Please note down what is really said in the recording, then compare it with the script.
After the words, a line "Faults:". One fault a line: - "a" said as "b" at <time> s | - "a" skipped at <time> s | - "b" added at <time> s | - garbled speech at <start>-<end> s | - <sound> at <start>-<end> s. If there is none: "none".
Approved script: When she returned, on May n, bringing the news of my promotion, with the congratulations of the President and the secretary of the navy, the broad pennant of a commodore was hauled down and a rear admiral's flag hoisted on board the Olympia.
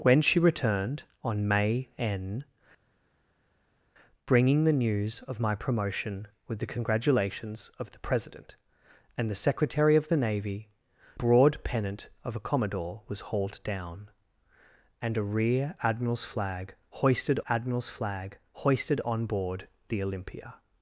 When she returned, on May n, bringing the news of my promotion, with the congratulations of the President and the secretary of the navy, broad pennant of a commodore was hauled down and a rear admiral's flag hoisted admiral's flag hoisted on board the Olympia.
Faults:
- "the" skipped at 10.7 s
- "admiral's flag hoisted" added at 17.5 s